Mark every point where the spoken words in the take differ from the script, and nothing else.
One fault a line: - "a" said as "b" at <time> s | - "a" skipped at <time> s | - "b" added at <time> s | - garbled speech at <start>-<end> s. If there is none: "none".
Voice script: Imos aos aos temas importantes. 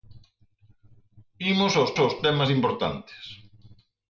none